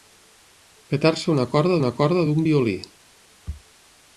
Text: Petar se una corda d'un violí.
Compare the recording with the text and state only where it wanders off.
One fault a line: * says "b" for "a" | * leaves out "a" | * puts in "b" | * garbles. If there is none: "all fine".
* puts in "una corda"